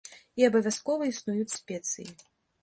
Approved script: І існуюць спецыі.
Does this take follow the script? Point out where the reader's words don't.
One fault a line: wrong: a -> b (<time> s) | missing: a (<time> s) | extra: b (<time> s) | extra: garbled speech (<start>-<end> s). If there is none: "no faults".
extra: абавязкова (0.5 s)